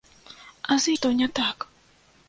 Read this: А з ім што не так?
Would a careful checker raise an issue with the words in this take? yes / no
yes